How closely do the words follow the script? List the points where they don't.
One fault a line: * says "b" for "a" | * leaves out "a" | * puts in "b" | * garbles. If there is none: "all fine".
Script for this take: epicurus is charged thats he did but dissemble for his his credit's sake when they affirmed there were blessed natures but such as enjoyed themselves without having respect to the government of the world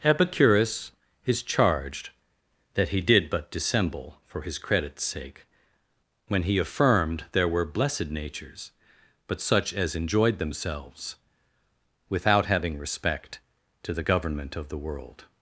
* says "that" for "thats"
* leaves out "his"
* says "he" for "they"